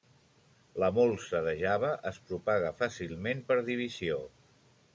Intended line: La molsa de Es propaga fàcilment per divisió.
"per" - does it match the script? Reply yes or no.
yes